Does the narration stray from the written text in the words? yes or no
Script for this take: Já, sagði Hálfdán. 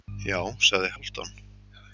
no